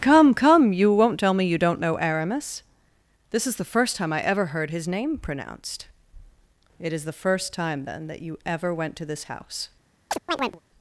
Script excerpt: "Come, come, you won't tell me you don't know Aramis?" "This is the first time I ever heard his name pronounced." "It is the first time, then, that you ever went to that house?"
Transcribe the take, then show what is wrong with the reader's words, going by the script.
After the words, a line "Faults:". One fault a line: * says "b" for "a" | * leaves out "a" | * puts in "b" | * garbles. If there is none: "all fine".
"Come, come, you won't tell me you don't know Aramis?" "This is the first time I ever heard his name pronounced." "It is the first time, then, that you ever went to this house?"
Faults:
* says "this" for "that"